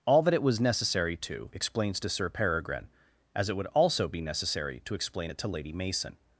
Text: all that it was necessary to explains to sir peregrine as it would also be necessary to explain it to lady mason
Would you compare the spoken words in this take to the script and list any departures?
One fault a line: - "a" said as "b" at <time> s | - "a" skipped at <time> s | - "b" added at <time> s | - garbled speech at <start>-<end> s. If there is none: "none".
none